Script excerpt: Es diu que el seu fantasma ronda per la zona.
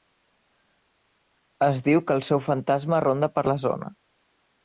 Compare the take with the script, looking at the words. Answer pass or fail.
pass